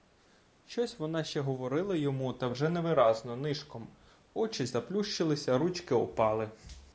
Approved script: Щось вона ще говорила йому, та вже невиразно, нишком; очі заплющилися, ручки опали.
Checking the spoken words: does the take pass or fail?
pass